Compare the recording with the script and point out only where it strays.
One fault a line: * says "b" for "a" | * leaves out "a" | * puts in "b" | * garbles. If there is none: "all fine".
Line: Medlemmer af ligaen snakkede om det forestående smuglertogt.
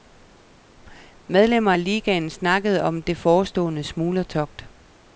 all fine